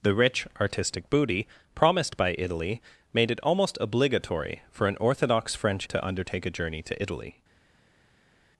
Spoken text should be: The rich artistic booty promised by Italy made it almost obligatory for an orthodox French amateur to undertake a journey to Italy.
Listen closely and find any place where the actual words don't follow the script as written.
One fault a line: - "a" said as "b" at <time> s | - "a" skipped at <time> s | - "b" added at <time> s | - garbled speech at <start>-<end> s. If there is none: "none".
- "amateur" skipped at 5.9 s